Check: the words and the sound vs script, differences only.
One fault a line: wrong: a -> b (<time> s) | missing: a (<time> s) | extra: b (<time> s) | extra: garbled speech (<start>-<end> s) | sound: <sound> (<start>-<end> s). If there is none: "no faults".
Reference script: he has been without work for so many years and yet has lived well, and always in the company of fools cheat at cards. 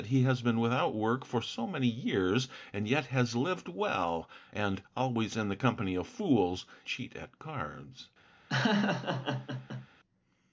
sound: laugh (8.5-9.9 s)